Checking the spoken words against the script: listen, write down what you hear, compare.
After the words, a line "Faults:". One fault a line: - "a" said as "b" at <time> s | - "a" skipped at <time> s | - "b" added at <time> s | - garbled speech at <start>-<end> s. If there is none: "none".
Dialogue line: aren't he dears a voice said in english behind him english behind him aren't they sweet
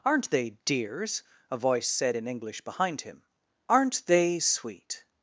aren't they dears a voice said in english behind him aren't they sweet
Faults:
- "he" said as "they" at 0.3 s
- "english behind him" skipped at 3.2 s